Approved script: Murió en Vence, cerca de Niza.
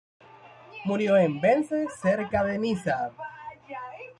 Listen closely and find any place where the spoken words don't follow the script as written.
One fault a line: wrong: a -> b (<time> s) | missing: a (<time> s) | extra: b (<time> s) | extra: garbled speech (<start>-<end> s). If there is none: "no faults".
no faults